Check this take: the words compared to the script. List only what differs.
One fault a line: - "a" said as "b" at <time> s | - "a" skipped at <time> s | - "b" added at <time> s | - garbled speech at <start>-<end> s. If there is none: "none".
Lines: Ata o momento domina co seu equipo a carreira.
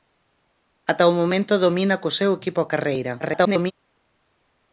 - garbled speech at 3.2-3.7 s